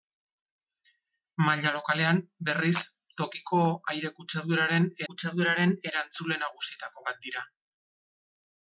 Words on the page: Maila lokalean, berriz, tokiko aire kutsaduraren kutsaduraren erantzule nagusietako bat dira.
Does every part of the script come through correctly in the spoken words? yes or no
yes